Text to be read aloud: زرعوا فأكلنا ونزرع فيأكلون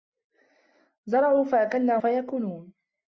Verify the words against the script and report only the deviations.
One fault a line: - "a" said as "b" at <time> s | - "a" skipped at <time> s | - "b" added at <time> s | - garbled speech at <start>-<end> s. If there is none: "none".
- "ونزرع" skipped at 2.0 s